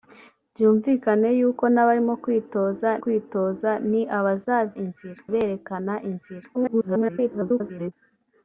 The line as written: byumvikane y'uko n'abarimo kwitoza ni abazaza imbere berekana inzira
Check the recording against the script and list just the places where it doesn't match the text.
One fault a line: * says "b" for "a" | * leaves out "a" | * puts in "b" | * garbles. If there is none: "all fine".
* puts in "kwitoza"
* says "inzira" for "imbere"
* garbles